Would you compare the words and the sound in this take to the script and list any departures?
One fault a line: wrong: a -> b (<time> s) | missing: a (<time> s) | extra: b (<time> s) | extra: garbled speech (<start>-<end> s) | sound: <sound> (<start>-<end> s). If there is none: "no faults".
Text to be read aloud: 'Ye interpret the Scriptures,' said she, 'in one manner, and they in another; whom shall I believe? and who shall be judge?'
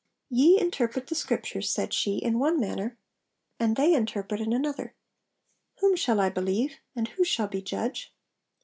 extra: interpret (3.9 s)